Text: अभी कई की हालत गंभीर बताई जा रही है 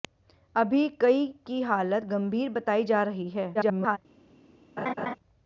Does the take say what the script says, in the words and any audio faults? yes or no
no